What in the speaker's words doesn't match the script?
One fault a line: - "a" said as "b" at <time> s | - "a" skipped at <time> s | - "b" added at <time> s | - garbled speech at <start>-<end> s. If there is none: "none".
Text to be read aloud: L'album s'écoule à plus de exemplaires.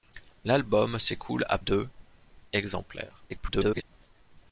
- "plus" skipped at 1.6 s
- garbled speech at 3.3-3.8 s